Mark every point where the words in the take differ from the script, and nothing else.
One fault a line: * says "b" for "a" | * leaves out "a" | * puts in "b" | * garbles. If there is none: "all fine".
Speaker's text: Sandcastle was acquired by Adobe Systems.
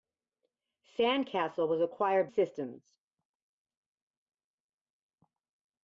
* leaves out "by Adobe"